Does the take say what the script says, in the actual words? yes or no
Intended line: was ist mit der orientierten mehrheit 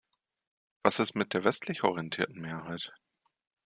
no